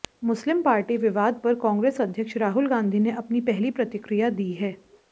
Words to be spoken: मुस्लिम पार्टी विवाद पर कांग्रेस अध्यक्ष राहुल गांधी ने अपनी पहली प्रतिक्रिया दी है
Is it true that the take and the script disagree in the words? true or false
false